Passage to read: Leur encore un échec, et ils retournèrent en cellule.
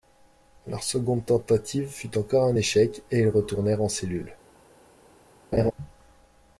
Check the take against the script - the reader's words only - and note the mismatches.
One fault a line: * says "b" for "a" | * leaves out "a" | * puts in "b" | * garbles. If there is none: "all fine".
* puts in "seconde tentative fut"